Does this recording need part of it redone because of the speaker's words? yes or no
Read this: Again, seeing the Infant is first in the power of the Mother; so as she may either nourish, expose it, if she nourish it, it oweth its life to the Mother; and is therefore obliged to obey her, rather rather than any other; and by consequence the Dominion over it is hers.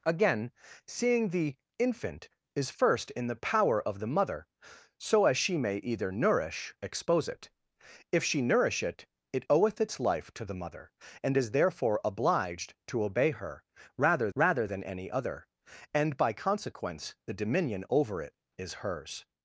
no